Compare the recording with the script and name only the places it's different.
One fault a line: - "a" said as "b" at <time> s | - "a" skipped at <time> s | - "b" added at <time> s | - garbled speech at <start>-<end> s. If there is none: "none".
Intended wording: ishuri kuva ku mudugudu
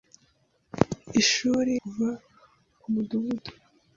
none